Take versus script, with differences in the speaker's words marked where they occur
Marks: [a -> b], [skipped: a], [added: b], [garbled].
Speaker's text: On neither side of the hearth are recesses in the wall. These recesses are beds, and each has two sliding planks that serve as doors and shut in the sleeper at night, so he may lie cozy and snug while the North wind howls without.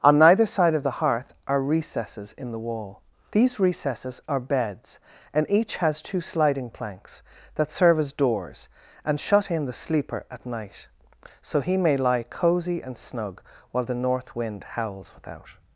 On neither side of the hearth are recesses in the wall. These recesses are beds, and each has two sliding planks that serve as doors and shut in the sleeper at night, so he may lie cozy and snug while the North wind howls without.